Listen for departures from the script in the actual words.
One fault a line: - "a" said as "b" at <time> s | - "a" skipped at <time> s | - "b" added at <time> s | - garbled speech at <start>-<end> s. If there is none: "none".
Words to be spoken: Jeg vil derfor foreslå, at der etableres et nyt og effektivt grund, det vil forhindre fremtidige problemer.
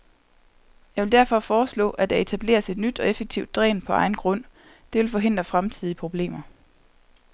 - "dræn på egen" added at 3.5 s